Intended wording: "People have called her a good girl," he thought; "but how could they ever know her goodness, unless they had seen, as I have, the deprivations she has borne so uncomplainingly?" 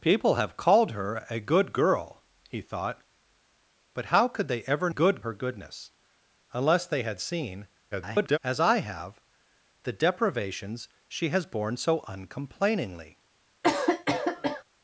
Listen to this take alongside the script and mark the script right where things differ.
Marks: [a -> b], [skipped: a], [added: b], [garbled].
"People have called her a good girl," he thought; "but how could they ever [know -> good] her goodness, unless they had seen, [garbled] as I have, the deprivations she has borne so uncomplainingly?"